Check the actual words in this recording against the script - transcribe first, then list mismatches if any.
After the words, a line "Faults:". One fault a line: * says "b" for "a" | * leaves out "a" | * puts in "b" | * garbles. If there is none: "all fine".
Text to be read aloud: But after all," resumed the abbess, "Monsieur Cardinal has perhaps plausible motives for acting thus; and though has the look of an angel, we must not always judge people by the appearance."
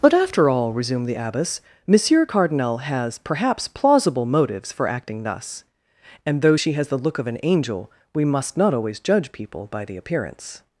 But after all," resumed the abbess, "Monsieur Cardinal has perhaps plausible motives for acting thus; and though she has the look of an angel, we must not always judge people by the appearance."
Faults:
* puts in "she"